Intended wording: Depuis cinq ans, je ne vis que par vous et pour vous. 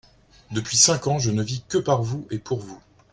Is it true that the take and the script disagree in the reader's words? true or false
false